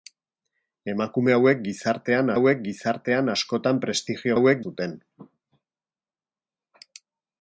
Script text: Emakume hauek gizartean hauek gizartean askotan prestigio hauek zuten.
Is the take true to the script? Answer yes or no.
yes